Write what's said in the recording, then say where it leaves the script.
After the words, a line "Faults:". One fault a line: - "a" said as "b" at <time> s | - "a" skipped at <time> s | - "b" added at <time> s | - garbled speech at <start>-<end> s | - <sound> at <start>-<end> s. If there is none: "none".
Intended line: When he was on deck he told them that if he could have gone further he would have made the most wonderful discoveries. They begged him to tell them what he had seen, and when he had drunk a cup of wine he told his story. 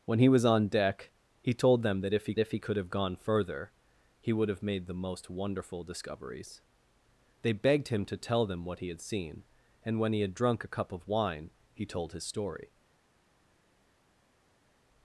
When he was on deck he told them that if he if he could have gone further he would have made the most wonderful discoveries. They begged him to tell them what he had seen, and when he had drunk a cup of wine he told his story.
Faults:
- "if he" added at 2.4 s